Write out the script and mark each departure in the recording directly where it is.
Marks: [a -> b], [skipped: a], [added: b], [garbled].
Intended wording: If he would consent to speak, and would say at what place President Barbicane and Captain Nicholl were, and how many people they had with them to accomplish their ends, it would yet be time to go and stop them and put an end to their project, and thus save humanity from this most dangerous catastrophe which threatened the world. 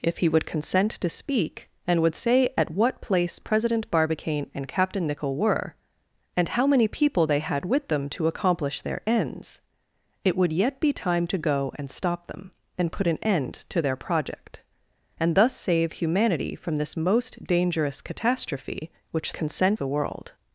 If he would consent to speak, and would say at what place President Barbicane and Captain Nicholl were, and how many people they had with them to accomplish their ends, it would yet be time to go and stop them and put an end to their project, and thus save humanity from this most dangerous catastrophe which [threatened -> consent] the world.